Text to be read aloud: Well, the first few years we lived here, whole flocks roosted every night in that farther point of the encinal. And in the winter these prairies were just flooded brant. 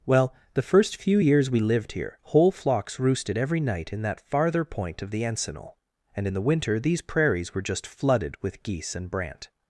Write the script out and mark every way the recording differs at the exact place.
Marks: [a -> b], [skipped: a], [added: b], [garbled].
Well, the first few years we lived here, whole flocks roosted every night in that farther point of the encinal. And in the winter these prairies were just flooded [added: with geese and] brant.